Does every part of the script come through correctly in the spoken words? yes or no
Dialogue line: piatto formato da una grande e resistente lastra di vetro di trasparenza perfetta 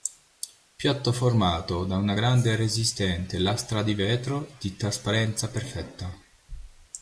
yes